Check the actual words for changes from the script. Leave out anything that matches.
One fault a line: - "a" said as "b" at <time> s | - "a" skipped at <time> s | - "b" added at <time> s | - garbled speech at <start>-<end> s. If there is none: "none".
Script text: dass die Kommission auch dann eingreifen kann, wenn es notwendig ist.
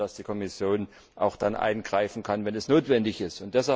none